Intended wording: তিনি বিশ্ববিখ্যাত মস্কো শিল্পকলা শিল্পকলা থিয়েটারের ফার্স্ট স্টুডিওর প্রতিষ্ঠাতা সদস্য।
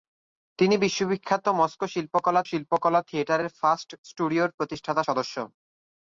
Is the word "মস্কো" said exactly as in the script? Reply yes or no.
yes